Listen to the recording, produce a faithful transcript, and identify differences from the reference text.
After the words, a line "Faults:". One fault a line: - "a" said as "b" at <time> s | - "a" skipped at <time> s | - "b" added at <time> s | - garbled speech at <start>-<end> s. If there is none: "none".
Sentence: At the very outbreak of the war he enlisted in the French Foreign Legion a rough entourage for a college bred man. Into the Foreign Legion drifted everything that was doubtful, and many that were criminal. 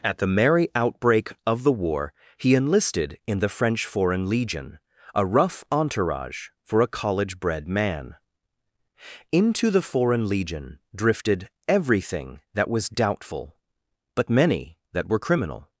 At the merry outbreak of the war he enlisted in the French Foreign Legion a rough entourage for a college bred man. Into the Foreign Legion drifted everything that was doubtful, but many that were criminal.
Faults:
- "very" said as "merry" at 0.3 s
- "and" said as "but" at 14.2 s